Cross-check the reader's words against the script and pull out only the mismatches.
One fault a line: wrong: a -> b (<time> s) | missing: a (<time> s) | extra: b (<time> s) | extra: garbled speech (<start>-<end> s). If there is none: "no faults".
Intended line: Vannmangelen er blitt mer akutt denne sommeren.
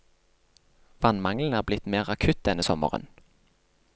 no faults